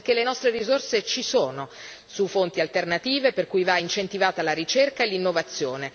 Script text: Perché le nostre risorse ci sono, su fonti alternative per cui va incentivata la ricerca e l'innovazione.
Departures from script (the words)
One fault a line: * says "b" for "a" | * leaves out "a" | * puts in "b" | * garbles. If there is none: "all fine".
all fine